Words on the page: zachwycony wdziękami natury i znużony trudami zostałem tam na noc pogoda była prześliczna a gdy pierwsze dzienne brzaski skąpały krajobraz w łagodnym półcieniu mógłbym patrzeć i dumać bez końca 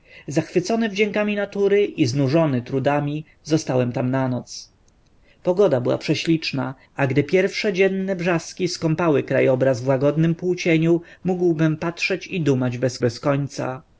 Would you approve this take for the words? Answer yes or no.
no